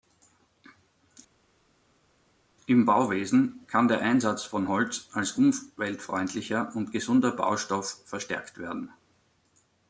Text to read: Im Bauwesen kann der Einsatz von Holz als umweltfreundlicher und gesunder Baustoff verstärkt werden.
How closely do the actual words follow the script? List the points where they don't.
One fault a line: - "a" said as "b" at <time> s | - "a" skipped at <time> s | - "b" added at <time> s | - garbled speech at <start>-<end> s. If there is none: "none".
none